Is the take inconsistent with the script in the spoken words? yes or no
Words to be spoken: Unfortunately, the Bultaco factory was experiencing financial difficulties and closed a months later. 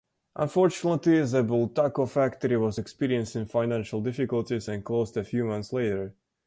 yes